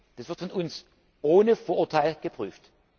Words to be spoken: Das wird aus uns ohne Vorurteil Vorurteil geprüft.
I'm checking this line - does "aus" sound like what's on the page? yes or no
no